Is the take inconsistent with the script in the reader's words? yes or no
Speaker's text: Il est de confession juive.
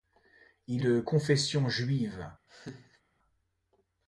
yes